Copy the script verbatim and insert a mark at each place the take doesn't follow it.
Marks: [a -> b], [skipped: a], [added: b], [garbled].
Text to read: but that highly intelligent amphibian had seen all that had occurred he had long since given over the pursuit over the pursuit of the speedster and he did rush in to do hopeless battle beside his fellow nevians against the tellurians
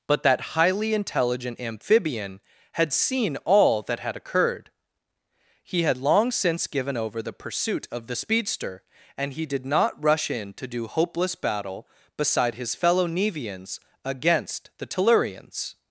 but that highly intelligent amphibian had seen all that had occurred he had long since given over the pursuit [skipped: over the pursuit] of the speedster and he did [added: not] rush in to do hopeless battle beside his fellow nevians against the tellurians